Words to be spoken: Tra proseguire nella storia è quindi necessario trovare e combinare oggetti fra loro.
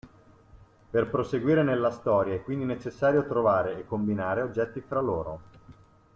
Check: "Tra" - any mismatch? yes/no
yes